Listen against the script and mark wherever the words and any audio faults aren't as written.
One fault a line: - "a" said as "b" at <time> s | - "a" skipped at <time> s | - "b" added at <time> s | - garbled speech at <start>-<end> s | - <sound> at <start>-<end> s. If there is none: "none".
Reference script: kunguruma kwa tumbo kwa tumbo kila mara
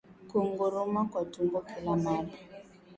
- "kwa tumbo" skipped at 1.6 s